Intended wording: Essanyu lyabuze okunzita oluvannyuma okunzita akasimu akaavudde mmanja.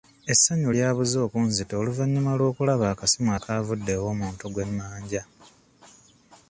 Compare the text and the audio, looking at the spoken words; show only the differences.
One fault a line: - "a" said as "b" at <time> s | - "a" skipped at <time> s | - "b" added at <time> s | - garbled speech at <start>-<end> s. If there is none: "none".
- "okunzita" said as "lw'okulaba" at 2.4 s
- "ew'omuntu gwe" added at 4.0 s